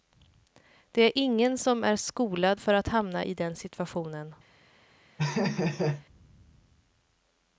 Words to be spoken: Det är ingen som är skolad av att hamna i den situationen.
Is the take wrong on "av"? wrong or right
wrong